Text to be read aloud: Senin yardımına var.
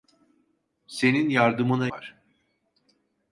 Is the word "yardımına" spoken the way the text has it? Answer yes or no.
yes